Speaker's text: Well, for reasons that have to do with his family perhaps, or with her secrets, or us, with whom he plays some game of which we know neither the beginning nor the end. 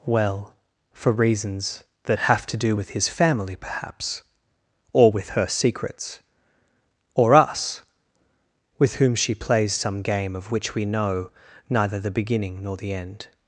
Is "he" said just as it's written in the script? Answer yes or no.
no